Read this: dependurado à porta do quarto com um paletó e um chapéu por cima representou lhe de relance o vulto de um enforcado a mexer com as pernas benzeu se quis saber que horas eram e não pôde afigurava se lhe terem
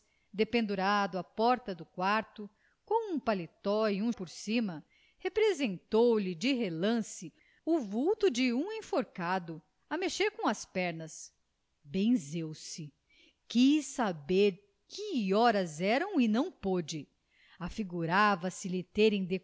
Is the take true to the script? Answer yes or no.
no